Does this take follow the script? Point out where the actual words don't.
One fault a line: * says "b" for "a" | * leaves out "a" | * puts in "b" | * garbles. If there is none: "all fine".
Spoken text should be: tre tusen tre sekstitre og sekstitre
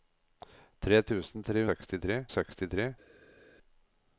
all fine